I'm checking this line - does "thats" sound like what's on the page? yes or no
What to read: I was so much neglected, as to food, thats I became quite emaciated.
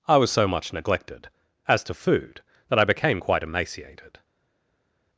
no